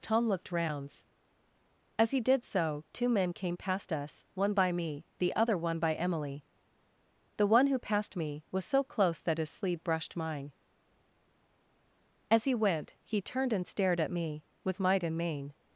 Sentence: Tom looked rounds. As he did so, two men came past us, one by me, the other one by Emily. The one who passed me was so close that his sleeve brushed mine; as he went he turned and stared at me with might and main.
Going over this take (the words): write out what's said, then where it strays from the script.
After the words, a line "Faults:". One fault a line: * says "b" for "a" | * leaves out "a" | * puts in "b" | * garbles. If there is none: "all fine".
Tom looked rounds. As he did so, two men came past us, one by me, the other one by Emily. The one who passed me was so close that his sleeve brushed mine; as he went he turned and stared at me with might and main.
Faults:
all fine